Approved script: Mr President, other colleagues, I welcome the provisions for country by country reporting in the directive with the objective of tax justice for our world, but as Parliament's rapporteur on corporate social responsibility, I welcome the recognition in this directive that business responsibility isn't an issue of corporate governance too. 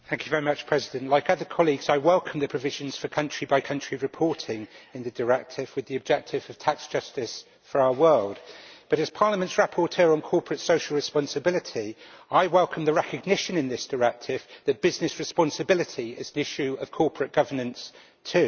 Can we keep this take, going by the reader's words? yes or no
no